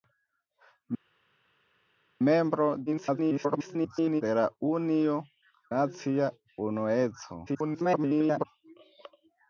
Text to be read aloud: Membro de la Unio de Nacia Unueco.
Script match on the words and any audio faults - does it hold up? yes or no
no